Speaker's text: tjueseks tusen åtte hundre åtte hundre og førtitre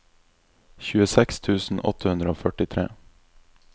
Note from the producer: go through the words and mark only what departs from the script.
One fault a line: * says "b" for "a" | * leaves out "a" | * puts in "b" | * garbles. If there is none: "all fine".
* leaves out "åtte hundre"